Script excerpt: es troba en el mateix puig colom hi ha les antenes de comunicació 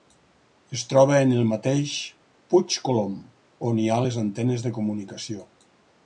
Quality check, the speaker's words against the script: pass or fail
fail